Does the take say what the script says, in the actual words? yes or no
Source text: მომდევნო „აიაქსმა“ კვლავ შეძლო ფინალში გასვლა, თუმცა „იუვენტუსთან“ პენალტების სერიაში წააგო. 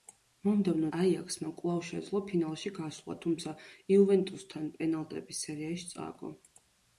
yes